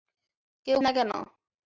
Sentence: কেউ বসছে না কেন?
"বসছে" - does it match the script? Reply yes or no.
no